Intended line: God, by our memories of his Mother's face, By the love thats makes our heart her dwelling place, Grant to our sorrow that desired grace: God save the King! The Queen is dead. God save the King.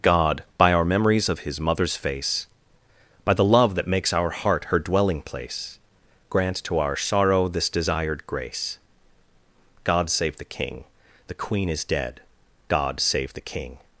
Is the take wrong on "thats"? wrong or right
wrong